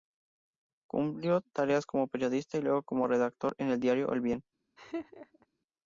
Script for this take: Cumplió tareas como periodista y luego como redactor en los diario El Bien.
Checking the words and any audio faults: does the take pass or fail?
fail